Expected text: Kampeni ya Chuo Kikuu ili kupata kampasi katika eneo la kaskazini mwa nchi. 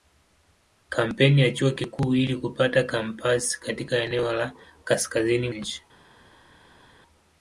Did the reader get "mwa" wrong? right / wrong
wrong